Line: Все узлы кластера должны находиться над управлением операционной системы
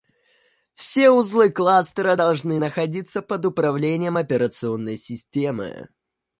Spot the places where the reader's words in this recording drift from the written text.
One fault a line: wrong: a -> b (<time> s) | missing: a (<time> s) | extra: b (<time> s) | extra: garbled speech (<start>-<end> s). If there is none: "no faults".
wrong: над -> под (3.2 s)